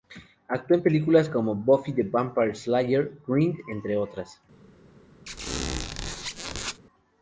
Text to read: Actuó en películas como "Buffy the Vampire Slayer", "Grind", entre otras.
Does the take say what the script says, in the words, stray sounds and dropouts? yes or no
no